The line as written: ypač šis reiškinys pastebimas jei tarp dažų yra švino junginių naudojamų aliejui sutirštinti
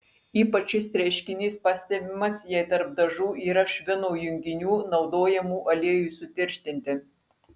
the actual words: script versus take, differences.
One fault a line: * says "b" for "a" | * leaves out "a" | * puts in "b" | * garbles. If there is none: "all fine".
all fine